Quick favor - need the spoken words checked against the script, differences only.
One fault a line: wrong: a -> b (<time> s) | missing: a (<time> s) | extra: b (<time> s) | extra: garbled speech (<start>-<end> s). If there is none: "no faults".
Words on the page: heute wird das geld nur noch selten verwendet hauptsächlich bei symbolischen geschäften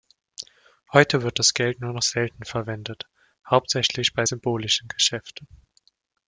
no faults